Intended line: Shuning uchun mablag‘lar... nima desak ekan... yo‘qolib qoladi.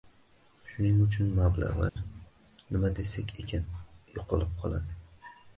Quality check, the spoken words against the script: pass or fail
pass